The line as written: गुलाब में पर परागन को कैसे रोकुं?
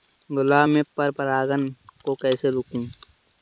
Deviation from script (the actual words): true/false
false